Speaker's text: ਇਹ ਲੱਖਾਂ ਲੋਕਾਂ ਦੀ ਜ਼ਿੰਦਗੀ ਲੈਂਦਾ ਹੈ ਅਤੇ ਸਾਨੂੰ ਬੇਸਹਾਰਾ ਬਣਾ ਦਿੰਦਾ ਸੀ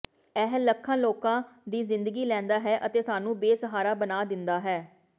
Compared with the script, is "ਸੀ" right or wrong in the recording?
wrong